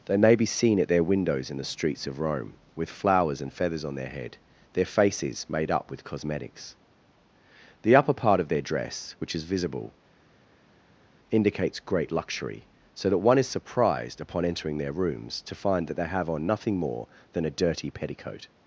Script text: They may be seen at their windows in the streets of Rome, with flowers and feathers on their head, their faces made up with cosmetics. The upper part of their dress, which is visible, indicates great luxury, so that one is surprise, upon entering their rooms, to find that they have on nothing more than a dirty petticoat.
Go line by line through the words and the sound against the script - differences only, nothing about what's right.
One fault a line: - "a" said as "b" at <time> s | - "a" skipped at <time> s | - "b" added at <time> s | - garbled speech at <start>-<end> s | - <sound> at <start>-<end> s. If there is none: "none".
- "surprise" said as "surprised" at 13.5 s